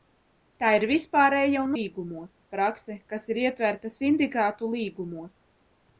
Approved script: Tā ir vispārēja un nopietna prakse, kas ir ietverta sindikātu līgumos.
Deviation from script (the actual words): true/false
true